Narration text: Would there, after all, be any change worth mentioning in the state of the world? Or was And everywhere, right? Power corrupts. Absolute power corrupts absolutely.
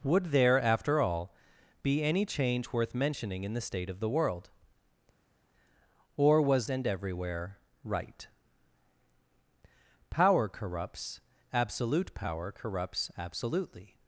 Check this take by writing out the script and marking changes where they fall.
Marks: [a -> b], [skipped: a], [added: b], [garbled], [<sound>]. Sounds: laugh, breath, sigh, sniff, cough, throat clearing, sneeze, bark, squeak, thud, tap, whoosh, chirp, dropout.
Would there, after all, be any change worth mentioning in the state of the world? Or was And everywhere, right? Power corrupts. Absolute power corrupts absolutely.